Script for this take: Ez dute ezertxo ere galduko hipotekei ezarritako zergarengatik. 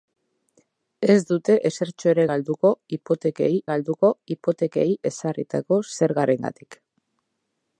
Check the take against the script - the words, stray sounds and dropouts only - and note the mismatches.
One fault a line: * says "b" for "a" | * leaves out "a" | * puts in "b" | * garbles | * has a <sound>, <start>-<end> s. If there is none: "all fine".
* puts in "galduko hipotekei"